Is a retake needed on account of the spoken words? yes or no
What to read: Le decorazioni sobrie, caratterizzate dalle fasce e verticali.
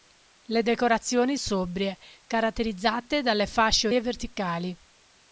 no